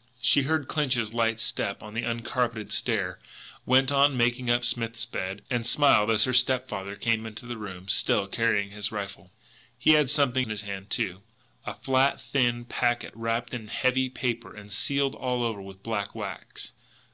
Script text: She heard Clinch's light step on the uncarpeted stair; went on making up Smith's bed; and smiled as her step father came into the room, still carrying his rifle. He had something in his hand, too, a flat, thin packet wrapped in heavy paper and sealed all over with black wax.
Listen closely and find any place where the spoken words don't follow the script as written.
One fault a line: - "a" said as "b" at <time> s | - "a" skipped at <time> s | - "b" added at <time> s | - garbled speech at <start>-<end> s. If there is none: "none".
none